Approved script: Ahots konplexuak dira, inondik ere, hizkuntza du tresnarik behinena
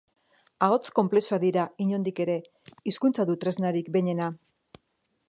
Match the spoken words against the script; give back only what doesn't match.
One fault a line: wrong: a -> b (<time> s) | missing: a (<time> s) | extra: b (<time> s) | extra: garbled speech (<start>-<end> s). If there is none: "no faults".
no faults